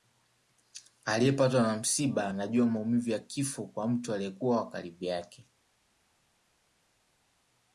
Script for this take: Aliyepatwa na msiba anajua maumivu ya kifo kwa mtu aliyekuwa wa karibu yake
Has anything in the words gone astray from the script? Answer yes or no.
no